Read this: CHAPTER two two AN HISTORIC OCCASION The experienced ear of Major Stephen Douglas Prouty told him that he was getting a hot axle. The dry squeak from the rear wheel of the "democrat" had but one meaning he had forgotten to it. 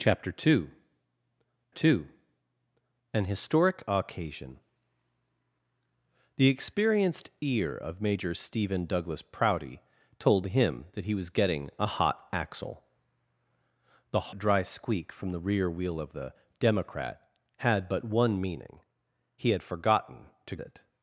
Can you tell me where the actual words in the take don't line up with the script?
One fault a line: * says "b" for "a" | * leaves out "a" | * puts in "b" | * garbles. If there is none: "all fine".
all fine